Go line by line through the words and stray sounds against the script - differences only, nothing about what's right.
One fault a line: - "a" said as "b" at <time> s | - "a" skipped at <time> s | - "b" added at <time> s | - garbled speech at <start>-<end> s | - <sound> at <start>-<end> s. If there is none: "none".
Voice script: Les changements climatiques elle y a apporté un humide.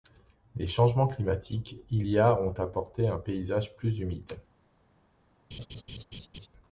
- "elle" said as "il" at 1.9 s
- "ont" added at 2.4 s
- "paysage plus" added at 3.2 s
- laugh at 5.5-6.5 s